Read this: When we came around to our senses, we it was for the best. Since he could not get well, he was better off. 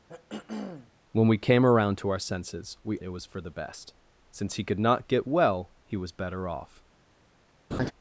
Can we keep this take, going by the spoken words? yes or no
yes